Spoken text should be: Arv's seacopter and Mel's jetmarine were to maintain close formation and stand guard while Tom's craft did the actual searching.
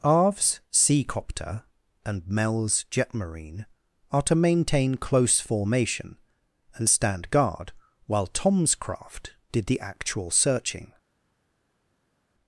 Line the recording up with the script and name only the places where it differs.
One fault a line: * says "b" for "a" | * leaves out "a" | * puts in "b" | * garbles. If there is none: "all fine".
* says "are" for "were"